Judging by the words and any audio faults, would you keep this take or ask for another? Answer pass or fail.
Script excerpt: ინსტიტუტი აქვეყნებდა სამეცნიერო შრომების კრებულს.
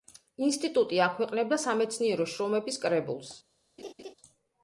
fail